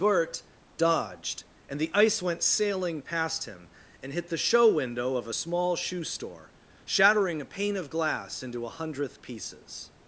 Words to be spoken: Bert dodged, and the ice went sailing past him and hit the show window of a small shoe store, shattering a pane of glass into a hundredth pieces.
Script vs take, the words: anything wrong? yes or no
no